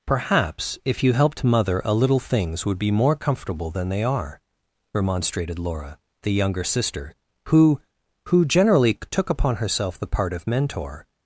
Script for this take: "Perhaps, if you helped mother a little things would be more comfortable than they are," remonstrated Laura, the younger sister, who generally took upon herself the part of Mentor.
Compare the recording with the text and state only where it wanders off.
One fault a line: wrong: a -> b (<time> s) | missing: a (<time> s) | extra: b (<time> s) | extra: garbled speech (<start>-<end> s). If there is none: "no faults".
extra: who (8.2 s)